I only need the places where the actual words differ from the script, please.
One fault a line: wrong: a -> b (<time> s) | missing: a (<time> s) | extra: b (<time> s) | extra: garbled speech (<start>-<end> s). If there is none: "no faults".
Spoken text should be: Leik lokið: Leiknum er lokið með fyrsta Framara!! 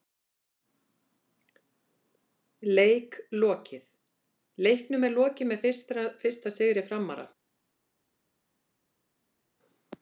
extra: sigri (6.6 s)